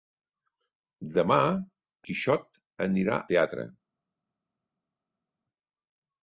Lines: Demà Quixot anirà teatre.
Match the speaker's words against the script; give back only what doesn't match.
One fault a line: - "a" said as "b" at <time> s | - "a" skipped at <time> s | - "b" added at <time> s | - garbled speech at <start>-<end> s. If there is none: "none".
none